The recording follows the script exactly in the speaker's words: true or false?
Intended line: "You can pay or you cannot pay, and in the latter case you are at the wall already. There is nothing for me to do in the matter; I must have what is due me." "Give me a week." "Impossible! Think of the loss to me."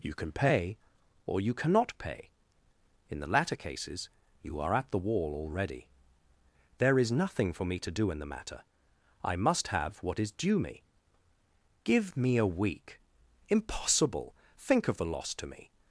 false